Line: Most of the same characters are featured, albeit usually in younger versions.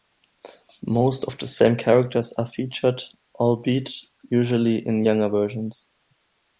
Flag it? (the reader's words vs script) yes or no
no